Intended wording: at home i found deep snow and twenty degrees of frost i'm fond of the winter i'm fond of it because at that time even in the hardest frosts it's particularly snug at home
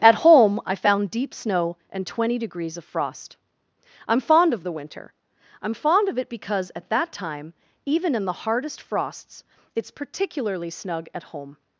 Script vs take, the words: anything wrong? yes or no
no